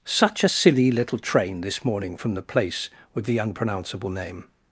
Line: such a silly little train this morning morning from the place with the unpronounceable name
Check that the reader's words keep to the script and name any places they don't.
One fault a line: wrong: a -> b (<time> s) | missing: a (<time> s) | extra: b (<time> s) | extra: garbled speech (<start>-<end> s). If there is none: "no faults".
missing: morning (2.2 s)